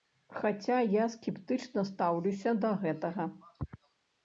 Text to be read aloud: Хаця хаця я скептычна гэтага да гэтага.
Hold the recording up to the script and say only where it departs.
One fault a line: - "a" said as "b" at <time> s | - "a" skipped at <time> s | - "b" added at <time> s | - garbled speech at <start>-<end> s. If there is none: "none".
- "хаця" skipped at 0.8 s
- "гэтага" said as "стаўлюся" at 1.9 s